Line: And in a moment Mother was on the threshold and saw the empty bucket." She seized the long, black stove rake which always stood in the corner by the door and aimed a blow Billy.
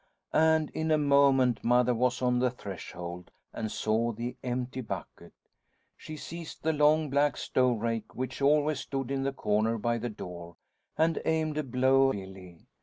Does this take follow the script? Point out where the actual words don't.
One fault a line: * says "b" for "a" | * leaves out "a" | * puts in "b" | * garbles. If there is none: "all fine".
all fine